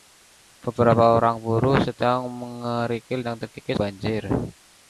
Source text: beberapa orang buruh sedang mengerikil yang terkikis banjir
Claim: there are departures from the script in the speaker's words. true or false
false